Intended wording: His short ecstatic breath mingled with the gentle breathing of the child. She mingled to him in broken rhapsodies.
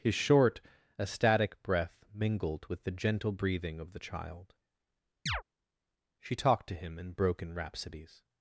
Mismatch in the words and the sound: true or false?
true